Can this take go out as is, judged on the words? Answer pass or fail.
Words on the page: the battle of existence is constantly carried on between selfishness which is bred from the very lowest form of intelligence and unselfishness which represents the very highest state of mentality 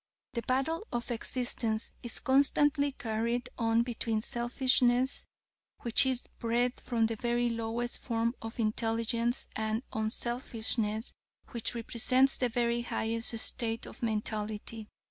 pass